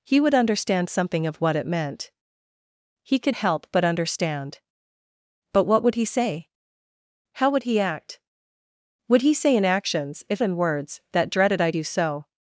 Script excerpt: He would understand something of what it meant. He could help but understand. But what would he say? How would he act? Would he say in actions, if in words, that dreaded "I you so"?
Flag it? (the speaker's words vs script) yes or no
no